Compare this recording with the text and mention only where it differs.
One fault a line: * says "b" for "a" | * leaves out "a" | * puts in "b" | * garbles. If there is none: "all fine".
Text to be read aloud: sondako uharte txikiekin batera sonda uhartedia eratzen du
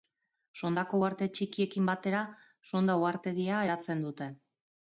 * says "dute" for "du"